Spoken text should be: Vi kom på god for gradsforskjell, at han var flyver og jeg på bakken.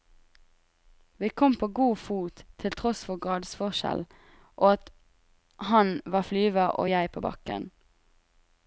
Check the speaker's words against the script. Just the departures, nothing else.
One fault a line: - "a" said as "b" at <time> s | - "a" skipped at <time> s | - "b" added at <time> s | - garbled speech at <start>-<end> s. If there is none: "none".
- "fot til tross" added at 2.0 s
- "og" added at 4.5 s